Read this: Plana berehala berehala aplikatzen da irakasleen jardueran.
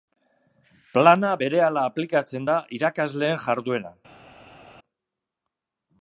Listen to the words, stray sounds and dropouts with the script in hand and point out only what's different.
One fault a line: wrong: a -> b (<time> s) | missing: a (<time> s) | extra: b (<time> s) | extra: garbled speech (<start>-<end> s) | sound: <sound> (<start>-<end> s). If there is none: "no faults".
missing: berehala (1.9 s)